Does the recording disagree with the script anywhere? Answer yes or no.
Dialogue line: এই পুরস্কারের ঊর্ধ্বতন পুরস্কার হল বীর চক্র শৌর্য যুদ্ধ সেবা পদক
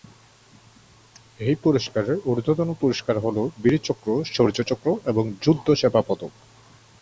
yes